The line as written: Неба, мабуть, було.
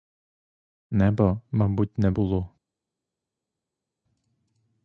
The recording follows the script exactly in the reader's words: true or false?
false